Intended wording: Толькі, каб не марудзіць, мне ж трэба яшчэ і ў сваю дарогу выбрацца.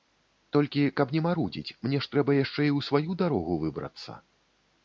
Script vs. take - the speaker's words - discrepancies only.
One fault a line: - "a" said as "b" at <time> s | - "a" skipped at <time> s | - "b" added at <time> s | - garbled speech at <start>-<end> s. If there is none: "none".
none